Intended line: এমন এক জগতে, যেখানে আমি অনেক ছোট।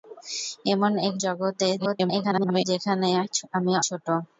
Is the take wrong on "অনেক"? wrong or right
wrong